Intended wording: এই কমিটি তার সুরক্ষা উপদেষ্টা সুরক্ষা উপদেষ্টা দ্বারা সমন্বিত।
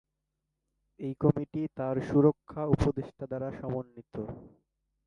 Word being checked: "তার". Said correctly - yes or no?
yes